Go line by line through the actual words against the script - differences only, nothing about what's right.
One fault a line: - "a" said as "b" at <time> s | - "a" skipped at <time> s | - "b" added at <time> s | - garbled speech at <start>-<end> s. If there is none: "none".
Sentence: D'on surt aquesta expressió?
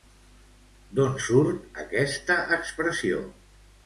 none